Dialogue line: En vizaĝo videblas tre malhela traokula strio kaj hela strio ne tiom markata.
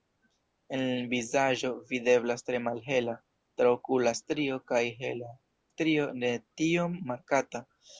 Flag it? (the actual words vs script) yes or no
no